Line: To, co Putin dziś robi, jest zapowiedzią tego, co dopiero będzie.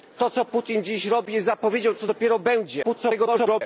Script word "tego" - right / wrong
wrong